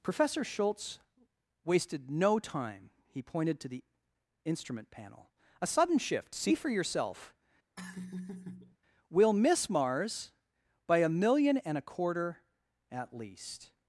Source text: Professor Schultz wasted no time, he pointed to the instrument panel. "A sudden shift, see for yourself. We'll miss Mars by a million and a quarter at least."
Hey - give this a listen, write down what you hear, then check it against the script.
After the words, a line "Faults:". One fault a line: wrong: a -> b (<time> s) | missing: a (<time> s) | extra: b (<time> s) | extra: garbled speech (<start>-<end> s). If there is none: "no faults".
Professor Schultz wasted no time, he pointed to the instrument panel. "A sudden shift, see for yourself. We'll miss Mars by a million and a quarter at least."
Faults:
no faults